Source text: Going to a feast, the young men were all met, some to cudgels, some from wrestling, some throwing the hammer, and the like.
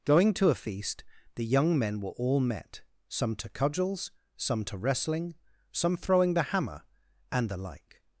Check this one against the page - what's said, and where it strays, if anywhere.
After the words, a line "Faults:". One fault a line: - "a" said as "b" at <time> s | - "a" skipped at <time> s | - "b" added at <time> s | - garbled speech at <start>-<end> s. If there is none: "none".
Going to a feast, the young men were all met, some to cudgels, some to wrestling, some throwing the hammer, and the like.
Faults:
- "from" said as "to" at 4.7 s